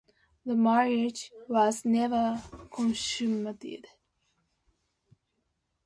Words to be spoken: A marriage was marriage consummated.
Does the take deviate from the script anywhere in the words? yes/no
yes